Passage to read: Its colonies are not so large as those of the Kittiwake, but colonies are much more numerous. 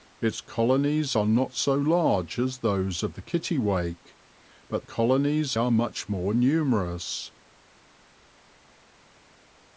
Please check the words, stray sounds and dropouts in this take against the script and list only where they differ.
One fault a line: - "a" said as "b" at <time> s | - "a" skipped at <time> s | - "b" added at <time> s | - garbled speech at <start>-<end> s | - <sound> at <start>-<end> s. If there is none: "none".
none